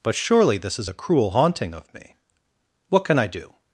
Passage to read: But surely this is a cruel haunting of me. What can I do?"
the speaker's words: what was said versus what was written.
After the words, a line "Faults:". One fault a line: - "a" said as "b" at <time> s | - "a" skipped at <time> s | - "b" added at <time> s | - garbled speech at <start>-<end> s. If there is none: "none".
But surely this is a cruel haunting of me. What can I do?"
Faults:
none